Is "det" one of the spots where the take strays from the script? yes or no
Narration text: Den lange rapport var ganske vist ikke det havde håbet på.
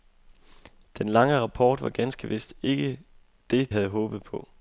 no